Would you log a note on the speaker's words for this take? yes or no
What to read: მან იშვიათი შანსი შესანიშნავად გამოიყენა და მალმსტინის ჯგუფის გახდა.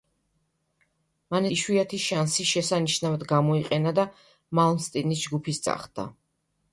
no